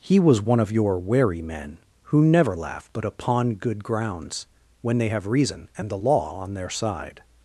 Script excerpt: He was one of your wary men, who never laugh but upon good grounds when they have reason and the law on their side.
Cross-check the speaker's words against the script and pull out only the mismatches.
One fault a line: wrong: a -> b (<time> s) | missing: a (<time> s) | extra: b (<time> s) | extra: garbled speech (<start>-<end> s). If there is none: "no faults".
no faults